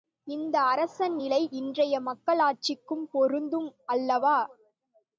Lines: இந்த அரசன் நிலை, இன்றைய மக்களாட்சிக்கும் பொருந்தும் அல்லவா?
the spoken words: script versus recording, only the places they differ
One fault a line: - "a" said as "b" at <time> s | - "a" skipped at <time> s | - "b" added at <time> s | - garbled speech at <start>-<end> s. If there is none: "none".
none